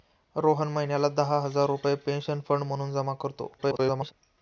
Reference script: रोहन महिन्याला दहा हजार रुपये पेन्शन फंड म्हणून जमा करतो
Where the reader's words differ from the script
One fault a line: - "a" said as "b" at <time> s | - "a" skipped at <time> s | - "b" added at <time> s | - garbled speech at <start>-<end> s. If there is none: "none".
- garbled speech at 3.6-4.1 s